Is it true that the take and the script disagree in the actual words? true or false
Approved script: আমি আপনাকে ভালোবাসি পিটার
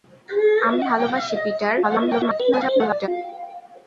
true